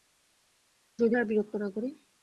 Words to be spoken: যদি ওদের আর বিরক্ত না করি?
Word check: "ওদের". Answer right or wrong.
wrong